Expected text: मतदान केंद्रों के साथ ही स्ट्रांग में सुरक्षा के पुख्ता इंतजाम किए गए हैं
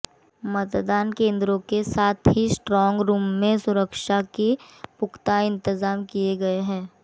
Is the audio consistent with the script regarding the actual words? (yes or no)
no